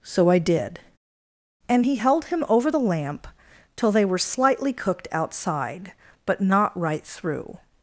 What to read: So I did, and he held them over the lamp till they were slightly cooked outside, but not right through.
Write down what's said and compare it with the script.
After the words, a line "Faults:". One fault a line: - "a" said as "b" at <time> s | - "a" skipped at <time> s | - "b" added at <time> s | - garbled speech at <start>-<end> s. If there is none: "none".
So I did, and he held him over the lamp till they were slightly cooked outside, but not right through.
Faults:
- "them" said as "him" at 2.3 s